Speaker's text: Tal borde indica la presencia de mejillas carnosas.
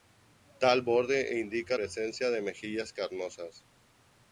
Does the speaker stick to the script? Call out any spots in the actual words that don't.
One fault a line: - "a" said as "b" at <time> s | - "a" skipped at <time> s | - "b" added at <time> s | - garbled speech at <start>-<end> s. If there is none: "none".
- "la" skipped at 1.8 s